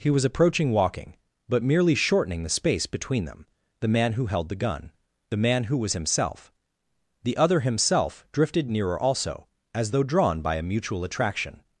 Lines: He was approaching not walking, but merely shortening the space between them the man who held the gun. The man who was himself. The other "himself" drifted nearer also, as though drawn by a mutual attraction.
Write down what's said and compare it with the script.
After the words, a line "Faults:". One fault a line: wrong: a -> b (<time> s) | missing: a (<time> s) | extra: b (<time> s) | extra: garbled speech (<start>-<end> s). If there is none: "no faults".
He was approaching walking, but merely shortening the space between them the man who held the gun. The man who was himself. The other "himself" drifted nearer also, as though drawn by a mutual attraction.
Faults:
missing: not (0.7 s)